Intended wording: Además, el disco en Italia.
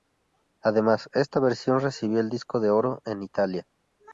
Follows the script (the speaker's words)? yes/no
no